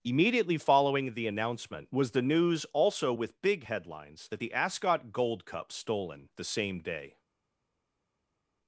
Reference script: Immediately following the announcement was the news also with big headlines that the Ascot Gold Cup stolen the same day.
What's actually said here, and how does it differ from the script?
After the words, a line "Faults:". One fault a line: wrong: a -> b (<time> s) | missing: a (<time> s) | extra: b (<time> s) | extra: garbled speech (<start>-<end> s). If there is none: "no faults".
Immediately following the announcement was the news also with big headlines that the Ascot Gold Cup stolen the same day.
Faults:
no faults